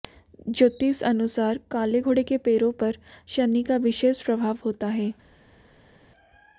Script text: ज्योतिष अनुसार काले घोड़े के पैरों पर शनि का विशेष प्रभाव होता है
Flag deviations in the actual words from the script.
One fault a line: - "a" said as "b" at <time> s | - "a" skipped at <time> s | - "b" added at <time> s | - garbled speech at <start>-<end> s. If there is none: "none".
none